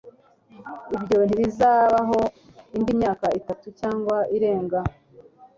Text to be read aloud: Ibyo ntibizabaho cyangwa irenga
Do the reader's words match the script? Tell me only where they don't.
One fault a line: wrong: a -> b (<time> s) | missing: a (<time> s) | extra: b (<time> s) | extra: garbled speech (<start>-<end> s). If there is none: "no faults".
extra: indi myaka itatu (2.8 s)